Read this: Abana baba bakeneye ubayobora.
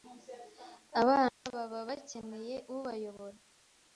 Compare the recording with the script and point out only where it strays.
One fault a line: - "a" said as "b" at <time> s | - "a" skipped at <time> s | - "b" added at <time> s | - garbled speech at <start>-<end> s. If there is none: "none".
none